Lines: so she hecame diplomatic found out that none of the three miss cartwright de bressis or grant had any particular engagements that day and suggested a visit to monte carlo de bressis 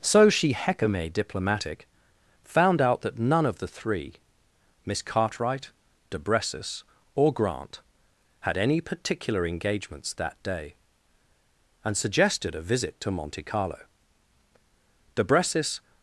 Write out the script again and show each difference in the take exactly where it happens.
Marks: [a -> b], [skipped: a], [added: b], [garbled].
so she hecame diplomatic found out that none of the three miss cartwright de bressis or grant had any particular engagements that day and suggested a visit to monte carlo de bressis